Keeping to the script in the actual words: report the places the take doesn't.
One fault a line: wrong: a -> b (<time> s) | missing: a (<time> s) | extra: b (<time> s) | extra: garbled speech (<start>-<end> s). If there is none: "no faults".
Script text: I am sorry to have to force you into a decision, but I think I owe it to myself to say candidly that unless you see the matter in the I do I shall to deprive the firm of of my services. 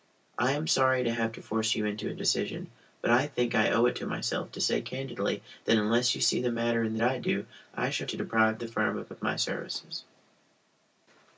no faults